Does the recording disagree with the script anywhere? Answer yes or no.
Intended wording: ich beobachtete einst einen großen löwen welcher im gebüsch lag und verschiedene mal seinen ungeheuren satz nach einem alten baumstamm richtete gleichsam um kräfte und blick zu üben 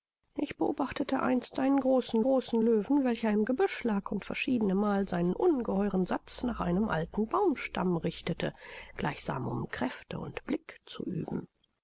yes